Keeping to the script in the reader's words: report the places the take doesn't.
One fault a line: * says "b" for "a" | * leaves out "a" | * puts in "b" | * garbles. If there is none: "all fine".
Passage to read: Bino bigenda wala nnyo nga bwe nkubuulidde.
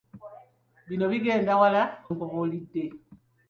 * leaves out "nnyo nga bwe"